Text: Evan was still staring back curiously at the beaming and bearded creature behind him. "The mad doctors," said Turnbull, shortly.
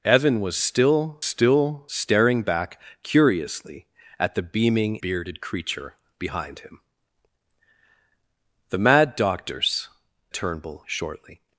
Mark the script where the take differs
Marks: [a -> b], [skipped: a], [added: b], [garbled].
Evan was still [added: still] staring back curiously at the beaming [skipped: and] bearded creature behind him. "The mad doctors," [skipped: said] Turnbull, shortly.